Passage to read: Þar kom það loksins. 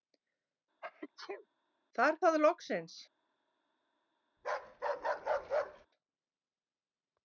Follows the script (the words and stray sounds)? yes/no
no